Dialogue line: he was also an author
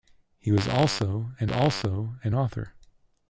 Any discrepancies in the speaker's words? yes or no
yes